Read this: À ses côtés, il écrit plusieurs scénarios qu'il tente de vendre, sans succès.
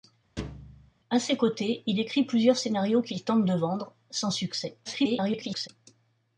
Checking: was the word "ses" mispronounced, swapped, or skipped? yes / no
no